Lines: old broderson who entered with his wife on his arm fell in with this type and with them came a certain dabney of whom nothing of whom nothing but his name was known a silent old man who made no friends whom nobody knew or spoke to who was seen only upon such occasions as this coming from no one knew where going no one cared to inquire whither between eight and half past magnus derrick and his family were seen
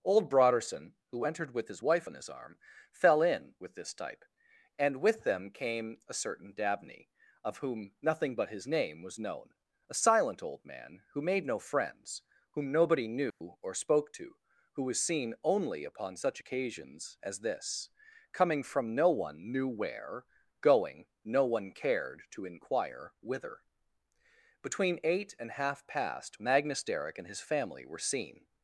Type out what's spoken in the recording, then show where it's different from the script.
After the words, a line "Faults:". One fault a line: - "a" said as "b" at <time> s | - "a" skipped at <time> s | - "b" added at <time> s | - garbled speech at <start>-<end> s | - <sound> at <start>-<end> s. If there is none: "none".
old broderson who entered with his wife on his arm fell in with this type and with them came a certain dabney of whom nothing but his name was known a silent old man who made no friends whom nobody knew or spoke to who was seen only upon such occasions as this coming from no one knew where going no one cared to inquire whither between eight and half past magnus derrick and his family were seen
Faults:
- "of whom nothing" skipped at 8.3 s
- dropout at 13.3-13.4 s